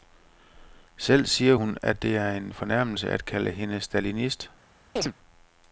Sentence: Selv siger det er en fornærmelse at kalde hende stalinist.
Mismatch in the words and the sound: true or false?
true